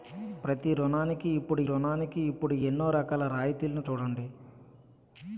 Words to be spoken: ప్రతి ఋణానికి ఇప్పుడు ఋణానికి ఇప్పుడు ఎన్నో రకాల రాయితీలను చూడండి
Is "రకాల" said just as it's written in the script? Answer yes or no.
yes